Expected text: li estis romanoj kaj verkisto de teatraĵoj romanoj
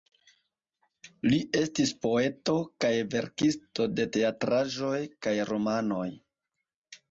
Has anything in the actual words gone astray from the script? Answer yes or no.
yes